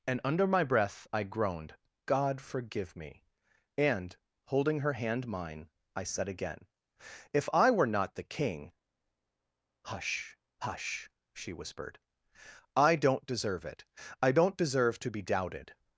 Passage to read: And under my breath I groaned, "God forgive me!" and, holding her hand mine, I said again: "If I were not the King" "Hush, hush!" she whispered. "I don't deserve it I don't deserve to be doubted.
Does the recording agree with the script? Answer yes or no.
yes